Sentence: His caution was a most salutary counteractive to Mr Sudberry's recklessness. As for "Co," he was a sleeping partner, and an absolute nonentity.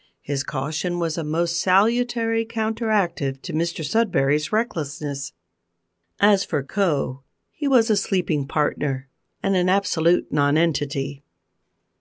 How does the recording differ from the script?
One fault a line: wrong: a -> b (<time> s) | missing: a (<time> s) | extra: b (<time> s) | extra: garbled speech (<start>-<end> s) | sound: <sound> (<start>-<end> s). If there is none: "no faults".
no faults